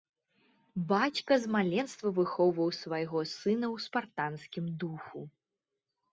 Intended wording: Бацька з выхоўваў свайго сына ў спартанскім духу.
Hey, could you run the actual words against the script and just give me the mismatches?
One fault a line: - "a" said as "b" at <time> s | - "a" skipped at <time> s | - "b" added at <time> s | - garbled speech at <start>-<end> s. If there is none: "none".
- "маленства" added at 1.6 s